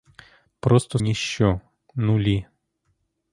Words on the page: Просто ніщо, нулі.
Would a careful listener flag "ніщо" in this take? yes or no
no